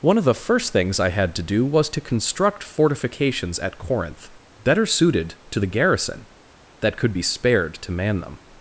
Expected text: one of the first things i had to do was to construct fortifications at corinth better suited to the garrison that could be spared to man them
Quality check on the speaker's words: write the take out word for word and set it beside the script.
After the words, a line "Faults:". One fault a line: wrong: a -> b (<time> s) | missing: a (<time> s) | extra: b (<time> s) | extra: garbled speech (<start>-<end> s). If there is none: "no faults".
one of the first things i had to do was to construct fortifications at corinth better suited to the garrison that could be spared to man them
Faults:
no faults